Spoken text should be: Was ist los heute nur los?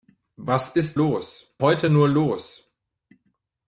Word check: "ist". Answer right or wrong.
right